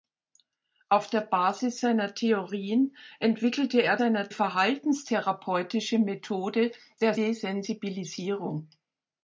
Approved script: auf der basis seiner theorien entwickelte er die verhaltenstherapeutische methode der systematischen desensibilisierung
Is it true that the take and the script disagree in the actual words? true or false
true